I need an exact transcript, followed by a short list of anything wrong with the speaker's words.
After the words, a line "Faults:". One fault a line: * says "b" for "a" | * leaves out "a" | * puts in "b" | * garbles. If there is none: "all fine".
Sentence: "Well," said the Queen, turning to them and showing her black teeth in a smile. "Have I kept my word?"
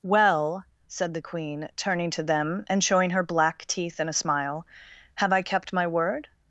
"Well," said the Queen, turning to them and showing her black teeth in a smile. "Have I kept my word?"
Faults:
all fine